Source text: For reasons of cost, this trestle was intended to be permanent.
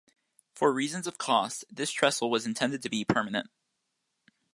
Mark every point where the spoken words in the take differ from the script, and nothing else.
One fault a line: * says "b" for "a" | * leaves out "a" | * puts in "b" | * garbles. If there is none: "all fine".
all fine